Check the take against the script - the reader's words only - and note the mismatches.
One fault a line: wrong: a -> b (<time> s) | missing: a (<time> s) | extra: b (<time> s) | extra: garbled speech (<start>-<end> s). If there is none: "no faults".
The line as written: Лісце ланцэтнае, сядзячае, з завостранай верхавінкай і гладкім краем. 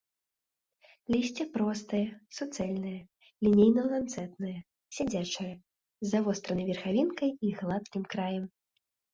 extra: простае суцэльнае лінейна (1.6 s)